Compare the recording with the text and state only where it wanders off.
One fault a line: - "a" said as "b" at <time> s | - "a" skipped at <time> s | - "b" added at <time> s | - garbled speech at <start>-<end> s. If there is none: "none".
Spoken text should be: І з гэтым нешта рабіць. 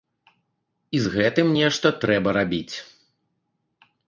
- "трэба" added at 2.0 s